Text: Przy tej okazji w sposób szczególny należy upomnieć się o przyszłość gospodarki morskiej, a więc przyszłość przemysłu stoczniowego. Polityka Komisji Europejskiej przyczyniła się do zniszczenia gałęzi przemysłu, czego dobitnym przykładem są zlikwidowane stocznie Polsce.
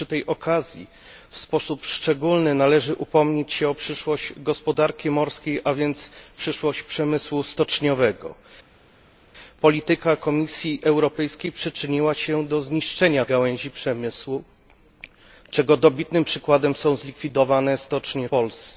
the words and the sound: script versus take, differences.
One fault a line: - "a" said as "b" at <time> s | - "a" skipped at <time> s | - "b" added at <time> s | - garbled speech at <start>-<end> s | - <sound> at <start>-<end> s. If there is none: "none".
none